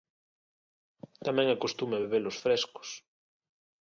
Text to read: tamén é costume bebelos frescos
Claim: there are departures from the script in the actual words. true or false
false